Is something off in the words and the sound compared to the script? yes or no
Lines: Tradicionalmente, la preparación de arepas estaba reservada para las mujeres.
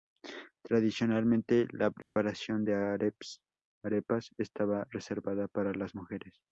yes